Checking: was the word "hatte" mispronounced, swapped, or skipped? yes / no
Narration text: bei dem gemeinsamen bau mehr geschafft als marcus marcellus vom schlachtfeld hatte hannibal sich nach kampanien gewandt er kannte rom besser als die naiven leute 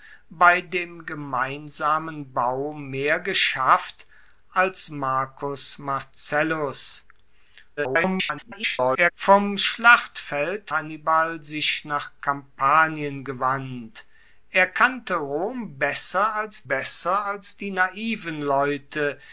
yes